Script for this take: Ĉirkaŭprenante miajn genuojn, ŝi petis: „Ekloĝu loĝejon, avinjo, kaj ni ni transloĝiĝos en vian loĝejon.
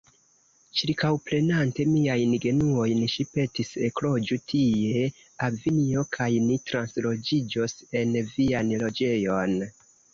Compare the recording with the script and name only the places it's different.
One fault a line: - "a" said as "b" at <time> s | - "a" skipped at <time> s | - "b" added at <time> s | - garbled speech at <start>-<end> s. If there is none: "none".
- "loĝejon" said as "tie" at 4.5 s
- "ni" skipped at 6.6 s